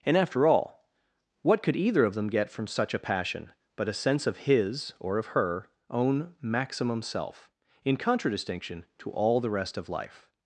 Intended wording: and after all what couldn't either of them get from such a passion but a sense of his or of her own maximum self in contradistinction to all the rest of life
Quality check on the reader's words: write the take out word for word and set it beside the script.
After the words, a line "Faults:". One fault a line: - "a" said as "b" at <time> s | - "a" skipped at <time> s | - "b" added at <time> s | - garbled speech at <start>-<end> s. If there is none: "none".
and after all what could either of them get from such a passion but a sense of his or of her own maximum self in contradistinction to all the rest of life
Faults:
- "couldn't" said as "could" at 1.6 s